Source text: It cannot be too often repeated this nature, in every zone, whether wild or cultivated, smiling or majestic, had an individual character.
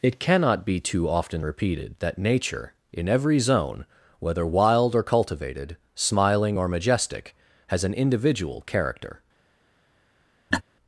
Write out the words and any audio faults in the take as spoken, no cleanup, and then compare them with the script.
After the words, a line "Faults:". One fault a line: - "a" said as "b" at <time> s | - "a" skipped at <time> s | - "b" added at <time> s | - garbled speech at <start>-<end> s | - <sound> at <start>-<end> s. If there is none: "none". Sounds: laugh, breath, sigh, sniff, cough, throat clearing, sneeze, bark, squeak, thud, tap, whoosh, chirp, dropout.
It cannot be too often repeated that nature, in every zone, whether wild or cultivated, smiling or majestic, has an individual character.
Faults:
- "this" said as "that" at 2.0 s
- "had" said as "has" at 7.7 s
- laugh at 10.5-10.6 s